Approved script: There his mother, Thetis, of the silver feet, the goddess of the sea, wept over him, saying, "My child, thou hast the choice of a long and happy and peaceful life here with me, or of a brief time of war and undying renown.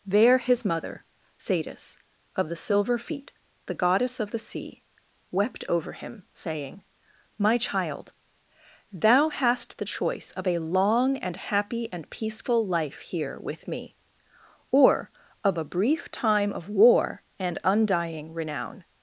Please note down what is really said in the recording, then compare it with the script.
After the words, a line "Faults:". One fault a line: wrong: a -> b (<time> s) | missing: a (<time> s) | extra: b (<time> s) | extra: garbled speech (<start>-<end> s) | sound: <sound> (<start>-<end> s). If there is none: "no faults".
There his mother, Thetis, of the silver feet, the goddess of the sea, wept over him, saying, "My child, thou hast the choice of a long and happy and peaceful life here with me, or of a brief time of war and undying renown.
Faults:
no faults